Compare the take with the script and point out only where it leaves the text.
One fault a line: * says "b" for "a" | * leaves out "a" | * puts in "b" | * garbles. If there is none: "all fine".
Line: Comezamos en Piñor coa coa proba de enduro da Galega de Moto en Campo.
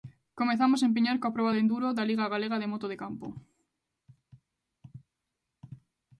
* leaves out "coa"
* puts in "Liga"
* says "de" for "en"